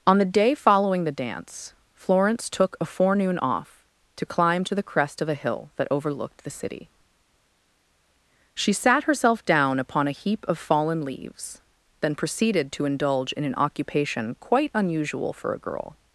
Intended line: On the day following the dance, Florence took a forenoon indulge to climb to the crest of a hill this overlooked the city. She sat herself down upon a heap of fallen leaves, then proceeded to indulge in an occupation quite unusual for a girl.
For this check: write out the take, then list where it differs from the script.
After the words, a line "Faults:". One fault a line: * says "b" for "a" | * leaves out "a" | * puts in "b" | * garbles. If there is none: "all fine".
On the day following the dance, Florence took a forenoon off to climb to the crest of a hill that overlooked the city. She sat herself down upon a heap of fallen leaves, then proceeded to indulge in an occupation quite unusual for a girl.
Faults:
* says "off" for "indulge"
* says "that" for "this"